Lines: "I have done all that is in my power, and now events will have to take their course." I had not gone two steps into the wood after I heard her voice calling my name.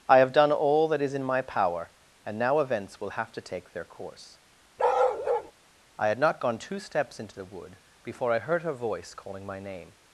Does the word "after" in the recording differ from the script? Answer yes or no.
yes